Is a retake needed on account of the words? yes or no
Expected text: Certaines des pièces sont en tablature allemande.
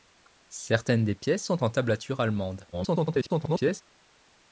yes